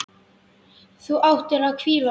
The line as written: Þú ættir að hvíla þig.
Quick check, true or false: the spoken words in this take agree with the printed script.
true